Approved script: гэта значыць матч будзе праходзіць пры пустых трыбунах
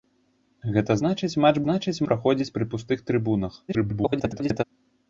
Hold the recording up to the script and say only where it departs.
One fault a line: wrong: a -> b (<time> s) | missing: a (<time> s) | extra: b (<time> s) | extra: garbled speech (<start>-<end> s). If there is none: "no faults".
wrong: будзе -> значыць (1.6 s)
extra: garbled speech (3.7-4.6 s)